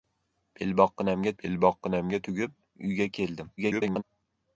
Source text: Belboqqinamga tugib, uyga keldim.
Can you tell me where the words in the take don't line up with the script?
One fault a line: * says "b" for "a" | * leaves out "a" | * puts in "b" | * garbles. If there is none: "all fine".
* puts in "belboqqinamga"
* garbles